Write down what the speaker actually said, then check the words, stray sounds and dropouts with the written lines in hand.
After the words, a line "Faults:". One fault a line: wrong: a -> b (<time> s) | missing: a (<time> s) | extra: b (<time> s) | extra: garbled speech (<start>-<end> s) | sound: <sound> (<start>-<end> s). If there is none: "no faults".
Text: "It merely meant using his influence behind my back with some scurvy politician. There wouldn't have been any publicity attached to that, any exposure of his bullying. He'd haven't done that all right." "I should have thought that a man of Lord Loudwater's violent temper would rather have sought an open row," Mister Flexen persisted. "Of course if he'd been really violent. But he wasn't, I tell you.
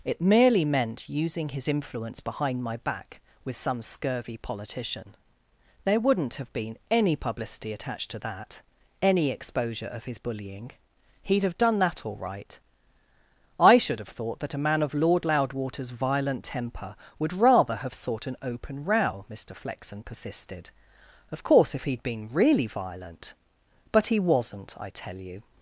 "It merely meant using his influence behind my back with some scurvy politician. There wouldn't have been any publicity attached to that, any exposure of his bullying. He'd have done that all right." "I should have thought that a man of Lord Loudwater's violent temper would rather have sought an open row," Mister Flexen persisted. "Of course if he'd been really violent. But he wasn't, I tell you.
Faults:
wrong: haven't -> have (11.4 s)